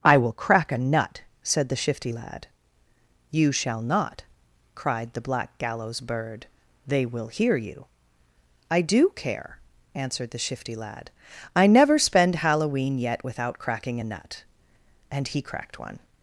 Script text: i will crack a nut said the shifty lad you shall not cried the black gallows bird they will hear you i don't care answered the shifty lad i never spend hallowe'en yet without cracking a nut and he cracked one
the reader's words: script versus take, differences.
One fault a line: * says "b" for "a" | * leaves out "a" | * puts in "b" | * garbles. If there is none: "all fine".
* says "do" for "don't"